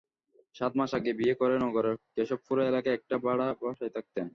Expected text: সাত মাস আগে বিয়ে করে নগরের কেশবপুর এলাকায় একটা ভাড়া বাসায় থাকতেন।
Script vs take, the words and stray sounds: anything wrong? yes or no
no